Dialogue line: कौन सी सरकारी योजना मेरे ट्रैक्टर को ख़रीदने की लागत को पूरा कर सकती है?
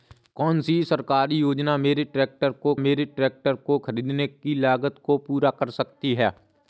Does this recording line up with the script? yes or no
no